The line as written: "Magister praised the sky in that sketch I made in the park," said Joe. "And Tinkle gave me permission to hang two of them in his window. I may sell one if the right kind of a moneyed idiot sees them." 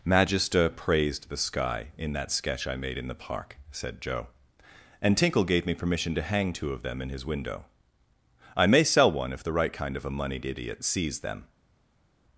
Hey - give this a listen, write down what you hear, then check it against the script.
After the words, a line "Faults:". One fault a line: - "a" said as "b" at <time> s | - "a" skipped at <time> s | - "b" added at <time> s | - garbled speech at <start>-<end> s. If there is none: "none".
"Magister praised the sky in that sketch I made in the park," said Joe. "And Tinkle gave me permission to hang two of them in his window. I may sell one if the right kind of a moneyed idiot sees them."
Faults:
none